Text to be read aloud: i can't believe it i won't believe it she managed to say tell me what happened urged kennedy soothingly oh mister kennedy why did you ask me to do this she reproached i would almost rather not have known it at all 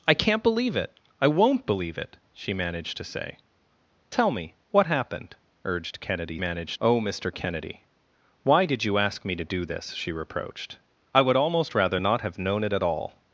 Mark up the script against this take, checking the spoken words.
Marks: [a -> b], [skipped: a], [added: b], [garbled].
i can't believe it i won't believe it she managed to say tell me what happened urged kennedy [soothingly -> managed] oh mister kennedy why did you ask me to do this she reproached i would almost rather not have known it at all